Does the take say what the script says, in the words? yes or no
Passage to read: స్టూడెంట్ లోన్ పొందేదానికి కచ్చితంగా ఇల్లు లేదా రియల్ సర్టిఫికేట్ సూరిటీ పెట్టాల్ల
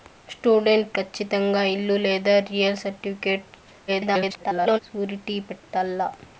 no